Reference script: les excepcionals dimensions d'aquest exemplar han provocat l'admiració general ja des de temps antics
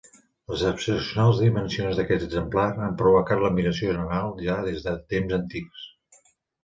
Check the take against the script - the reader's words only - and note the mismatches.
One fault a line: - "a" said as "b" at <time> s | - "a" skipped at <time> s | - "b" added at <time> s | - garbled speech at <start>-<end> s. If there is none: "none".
none